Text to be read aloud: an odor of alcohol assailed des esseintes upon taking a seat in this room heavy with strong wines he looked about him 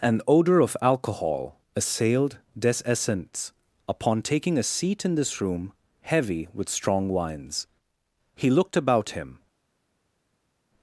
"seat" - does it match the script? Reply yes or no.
yes